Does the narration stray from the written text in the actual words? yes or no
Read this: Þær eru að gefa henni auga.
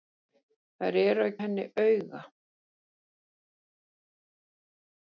yes